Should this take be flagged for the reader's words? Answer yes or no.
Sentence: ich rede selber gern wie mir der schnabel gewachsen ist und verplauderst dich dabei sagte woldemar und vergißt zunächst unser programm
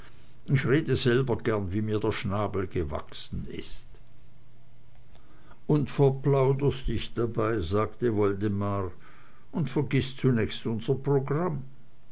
no